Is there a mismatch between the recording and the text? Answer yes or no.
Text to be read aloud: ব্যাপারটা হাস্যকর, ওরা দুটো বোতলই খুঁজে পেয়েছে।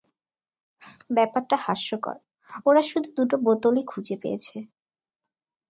yes